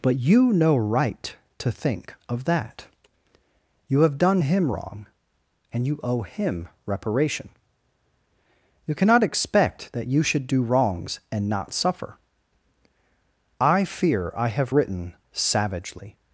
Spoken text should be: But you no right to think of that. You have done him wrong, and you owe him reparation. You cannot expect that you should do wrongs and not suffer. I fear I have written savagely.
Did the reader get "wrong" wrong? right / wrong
right